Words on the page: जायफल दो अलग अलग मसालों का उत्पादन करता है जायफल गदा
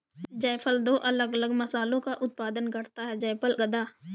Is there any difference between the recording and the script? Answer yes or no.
no